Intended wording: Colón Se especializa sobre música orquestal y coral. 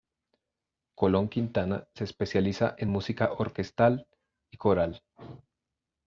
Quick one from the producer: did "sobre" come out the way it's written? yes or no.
no